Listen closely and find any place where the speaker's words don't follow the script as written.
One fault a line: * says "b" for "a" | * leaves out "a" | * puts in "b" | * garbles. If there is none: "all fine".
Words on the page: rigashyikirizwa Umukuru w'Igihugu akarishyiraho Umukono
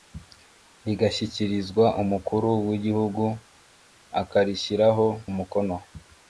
all fine